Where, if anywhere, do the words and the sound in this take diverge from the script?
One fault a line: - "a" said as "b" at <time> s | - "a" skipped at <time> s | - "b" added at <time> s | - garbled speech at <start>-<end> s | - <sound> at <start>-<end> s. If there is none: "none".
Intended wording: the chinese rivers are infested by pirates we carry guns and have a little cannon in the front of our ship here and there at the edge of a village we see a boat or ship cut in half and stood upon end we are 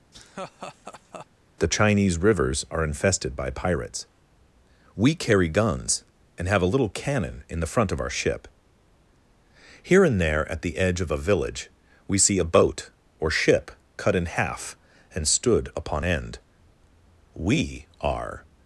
- laugh at 0.1-1.3 s